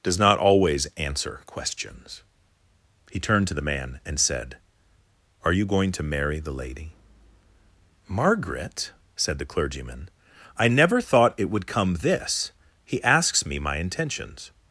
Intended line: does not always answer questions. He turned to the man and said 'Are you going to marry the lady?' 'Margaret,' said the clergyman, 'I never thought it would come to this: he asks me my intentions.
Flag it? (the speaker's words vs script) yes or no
yes